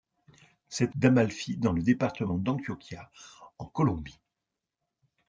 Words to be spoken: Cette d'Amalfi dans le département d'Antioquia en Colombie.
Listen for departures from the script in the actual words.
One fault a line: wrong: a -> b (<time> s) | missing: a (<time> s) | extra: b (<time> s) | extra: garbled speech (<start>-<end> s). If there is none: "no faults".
no faults